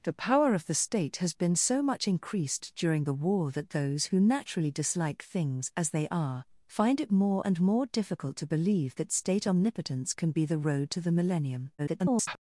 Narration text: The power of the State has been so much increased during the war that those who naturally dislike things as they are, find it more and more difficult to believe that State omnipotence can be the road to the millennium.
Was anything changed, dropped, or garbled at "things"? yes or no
no